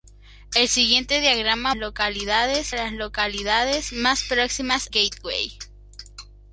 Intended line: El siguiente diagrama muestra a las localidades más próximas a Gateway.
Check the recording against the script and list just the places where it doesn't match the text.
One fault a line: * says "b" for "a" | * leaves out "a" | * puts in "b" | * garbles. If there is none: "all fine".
* says "localidades" for "muestra"
* leaves out "a"